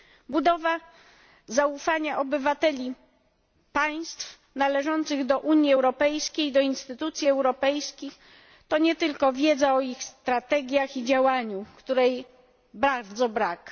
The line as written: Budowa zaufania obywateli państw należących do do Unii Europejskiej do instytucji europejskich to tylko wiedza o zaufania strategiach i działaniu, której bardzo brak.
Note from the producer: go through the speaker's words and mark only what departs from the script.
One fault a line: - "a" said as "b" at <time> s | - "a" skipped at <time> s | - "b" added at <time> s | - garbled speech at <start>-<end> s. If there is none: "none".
- "do" skipped at 5.4 s
- "nie" added at 8.8 s
- "zaufania" said as "ich" at 9.8 s